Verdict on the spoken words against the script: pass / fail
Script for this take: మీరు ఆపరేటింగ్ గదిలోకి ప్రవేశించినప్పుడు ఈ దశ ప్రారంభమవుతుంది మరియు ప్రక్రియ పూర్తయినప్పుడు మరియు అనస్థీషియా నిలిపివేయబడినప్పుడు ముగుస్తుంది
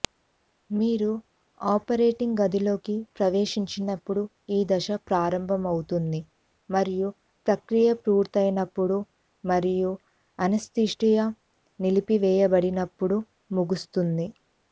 pass